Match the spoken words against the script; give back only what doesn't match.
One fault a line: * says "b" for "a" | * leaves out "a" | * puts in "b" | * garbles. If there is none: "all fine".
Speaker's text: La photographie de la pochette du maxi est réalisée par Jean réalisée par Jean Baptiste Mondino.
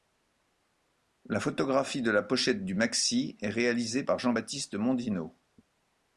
* leaves out "réalisée par Jean"